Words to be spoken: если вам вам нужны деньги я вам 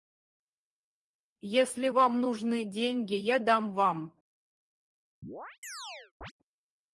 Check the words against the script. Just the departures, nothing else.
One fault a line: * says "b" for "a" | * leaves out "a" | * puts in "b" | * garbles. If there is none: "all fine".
* leaves out "вам"
* puts in "дам"